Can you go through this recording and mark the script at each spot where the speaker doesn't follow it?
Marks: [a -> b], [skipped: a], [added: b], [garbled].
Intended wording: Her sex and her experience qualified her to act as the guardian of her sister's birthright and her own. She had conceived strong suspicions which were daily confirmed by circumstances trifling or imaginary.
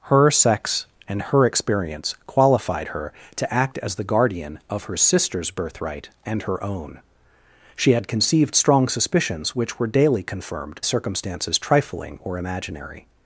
Her sex and her experience qualified her to act as the guardian of her sister's birthright and her own. She had conceived strong suspicions which were daily confirmed [skipped: by] circumstances trifling or imaginary.